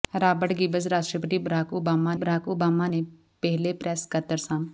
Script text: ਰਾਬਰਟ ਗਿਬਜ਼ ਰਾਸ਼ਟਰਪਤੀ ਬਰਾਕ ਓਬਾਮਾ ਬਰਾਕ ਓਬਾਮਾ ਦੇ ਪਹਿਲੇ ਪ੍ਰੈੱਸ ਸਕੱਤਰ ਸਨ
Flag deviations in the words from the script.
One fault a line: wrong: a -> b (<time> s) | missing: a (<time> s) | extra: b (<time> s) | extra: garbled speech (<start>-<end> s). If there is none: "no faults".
no faults